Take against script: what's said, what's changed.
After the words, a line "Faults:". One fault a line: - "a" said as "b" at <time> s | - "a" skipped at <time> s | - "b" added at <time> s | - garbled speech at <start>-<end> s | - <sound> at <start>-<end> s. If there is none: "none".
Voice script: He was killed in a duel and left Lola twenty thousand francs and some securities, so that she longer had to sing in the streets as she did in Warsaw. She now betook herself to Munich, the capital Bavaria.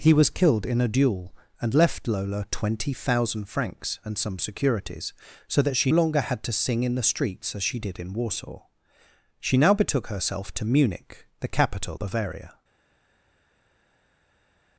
He was killed in a duel and left Lola twenty thousand francs and some securities, so that she longer had to sing in the streets as she did in Warsaw. She now betook herself to Munich, the capital Bavaria.
Faults:
none